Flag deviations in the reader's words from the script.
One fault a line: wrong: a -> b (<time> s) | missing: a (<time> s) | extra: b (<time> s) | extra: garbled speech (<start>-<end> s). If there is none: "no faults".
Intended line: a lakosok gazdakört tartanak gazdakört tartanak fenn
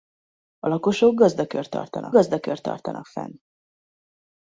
no faults